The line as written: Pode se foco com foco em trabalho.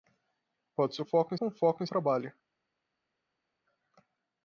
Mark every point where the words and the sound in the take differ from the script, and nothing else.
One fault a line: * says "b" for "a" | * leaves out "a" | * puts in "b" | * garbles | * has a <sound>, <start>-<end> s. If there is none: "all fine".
all fine